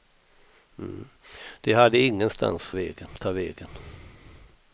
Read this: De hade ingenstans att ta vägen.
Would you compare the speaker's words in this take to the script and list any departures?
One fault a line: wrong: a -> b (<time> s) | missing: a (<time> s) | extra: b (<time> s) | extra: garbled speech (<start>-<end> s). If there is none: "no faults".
wrong: att -> vägen (2.7 s)